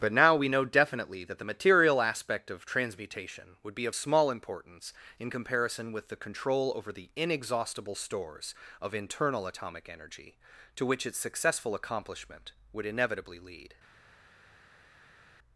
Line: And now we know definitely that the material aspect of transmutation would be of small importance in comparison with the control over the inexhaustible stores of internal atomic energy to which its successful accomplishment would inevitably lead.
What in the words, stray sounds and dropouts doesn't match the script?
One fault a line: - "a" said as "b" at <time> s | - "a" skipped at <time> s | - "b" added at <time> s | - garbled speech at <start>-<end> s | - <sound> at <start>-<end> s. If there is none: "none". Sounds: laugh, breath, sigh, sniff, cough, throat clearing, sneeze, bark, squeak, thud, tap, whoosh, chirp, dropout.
- "And" said as "But" at 0.0 s